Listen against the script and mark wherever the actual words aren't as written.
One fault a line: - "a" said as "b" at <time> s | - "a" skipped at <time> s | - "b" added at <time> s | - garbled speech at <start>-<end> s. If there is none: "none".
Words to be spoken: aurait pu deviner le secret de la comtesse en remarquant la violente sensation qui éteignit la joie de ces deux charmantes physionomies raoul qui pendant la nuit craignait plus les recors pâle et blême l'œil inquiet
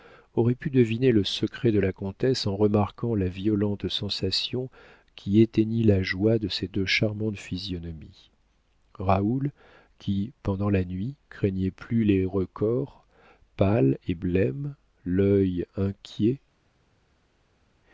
none